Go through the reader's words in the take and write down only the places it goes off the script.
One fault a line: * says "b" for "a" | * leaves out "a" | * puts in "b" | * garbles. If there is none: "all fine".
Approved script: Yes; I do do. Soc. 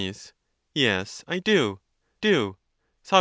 all fine